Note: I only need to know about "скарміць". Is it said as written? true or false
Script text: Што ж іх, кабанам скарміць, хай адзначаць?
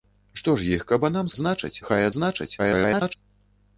false